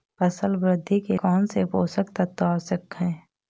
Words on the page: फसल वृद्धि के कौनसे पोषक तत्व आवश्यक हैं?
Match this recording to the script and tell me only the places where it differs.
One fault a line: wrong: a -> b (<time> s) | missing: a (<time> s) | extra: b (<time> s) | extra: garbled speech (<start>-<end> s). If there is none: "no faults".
no faults